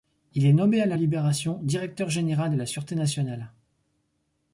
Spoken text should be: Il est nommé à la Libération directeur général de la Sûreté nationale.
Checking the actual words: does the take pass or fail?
pass